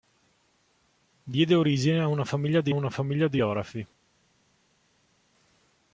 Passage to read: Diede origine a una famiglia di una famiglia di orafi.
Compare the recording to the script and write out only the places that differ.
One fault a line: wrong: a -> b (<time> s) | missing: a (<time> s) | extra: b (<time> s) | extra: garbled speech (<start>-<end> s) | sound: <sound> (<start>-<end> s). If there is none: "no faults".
no faults